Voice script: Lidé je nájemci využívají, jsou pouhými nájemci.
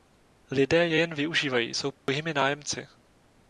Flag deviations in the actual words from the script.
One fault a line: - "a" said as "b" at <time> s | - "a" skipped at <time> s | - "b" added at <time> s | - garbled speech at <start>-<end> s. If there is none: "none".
- "nájemci" said as "jen" at 0.9 s